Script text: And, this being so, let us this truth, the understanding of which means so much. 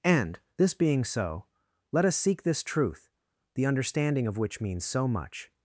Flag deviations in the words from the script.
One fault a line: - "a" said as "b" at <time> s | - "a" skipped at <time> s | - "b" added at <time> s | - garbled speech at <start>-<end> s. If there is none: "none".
- "seek" added at 2.1 s